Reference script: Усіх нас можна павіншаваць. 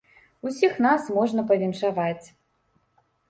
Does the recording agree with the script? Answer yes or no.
yes